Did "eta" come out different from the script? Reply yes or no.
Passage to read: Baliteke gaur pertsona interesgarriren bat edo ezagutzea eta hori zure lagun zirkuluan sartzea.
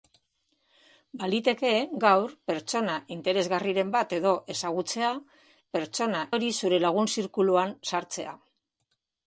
yes